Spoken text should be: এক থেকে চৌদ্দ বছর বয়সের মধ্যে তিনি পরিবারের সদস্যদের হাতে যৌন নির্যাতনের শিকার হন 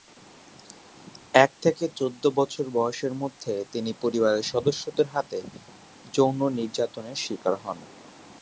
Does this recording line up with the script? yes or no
yes